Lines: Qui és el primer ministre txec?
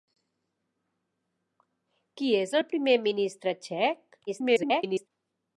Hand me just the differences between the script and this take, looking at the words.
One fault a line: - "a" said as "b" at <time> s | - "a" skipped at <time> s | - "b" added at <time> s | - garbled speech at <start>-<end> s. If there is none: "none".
- garbled speech at 4.3-5.1 s